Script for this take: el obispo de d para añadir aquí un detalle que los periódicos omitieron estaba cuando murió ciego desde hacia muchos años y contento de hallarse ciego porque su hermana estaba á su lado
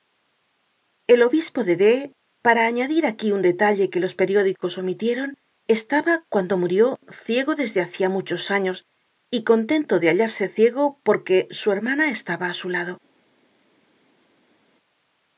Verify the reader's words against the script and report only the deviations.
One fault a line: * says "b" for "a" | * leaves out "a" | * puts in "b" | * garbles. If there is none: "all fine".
all fine